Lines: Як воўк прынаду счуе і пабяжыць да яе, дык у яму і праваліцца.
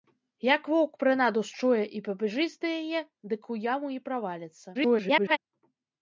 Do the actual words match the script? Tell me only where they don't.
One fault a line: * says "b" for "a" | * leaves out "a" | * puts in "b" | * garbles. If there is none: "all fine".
* garbles